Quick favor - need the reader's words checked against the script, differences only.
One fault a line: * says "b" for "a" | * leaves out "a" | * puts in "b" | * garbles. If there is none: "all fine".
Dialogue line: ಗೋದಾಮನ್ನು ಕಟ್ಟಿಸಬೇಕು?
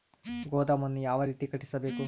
* puts in "ಯಾವ ರೇತಿ"